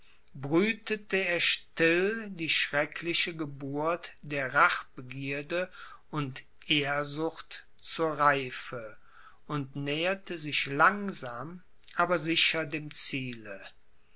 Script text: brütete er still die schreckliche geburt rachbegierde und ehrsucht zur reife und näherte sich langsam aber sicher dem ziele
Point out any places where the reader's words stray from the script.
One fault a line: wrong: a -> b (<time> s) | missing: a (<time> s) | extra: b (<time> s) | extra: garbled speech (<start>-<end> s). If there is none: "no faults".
extra: der (4.2 s)